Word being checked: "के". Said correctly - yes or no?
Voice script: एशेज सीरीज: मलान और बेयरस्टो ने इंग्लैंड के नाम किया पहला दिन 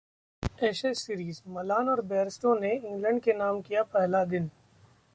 yes